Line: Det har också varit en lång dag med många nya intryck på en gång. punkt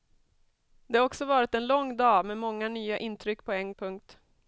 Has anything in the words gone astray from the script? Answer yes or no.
yes